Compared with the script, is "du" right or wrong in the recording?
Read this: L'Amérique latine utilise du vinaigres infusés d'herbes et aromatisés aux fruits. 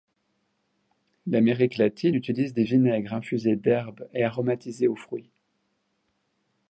wrong